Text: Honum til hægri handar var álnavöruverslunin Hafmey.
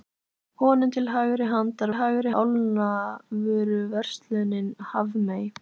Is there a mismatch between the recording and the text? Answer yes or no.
yes